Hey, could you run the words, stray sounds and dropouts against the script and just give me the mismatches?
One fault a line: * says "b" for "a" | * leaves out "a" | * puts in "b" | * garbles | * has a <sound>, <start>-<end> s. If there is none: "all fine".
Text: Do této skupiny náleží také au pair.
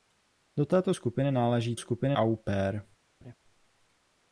* says "skupiny" for "také"
* has a laugh, 3.2-3.4 s